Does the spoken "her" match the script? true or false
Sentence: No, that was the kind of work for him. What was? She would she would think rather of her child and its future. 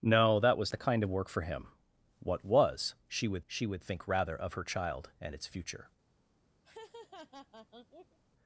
true